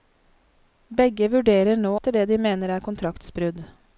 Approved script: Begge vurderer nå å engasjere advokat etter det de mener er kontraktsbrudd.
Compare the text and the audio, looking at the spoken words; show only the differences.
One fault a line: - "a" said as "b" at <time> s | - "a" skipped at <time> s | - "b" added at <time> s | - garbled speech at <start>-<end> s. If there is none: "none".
- "å engasjere advokat" skipped at 1.9 s